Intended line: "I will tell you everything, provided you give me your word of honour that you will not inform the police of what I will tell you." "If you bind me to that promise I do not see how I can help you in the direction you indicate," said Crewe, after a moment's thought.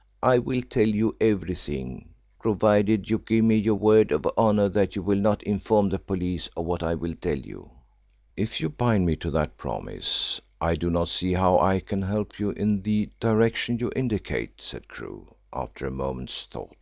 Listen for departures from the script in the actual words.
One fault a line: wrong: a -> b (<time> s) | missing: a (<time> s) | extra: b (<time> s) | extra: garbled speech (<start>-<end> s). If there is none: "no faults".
no faults